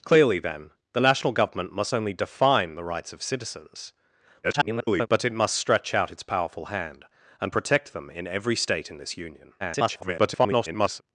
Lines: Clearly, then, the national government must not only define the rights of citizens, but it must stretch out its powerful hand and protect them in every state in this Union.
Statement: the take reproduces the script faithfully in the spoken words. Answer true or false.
false